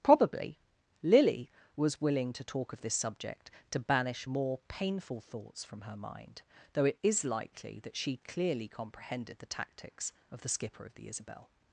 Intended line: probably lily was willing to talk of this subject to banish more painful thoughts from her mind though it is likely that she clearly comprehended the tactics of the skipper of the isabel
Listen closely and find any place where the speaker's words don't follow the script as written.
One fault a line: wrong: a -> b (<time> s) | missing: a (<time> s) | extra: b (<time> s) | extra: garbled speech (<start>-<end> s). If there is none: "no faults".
no faults